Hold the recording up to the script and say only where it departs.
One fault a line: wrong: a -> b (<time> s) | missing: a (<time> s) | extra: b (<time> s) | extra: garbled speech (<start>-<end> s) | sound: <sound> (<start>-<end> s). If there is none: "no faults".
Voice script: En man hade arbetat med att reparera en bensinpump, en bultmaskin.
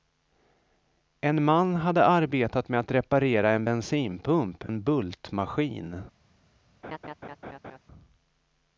sound: laugh (6.8-7.8 s)